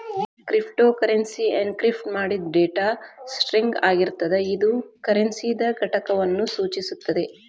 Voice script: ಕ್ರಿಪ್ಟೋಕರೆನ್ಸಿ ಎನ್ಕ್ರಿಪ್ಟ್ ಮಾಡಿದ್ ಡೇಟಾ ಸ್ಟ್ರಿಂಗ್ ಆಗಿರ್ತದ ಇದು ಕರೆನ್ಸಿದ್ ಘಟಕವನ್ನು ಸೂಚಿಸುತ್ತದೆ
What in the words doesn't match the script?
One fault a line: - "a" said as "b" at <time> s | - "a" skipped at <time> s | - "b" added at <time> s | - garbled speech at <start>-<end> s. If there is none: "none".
none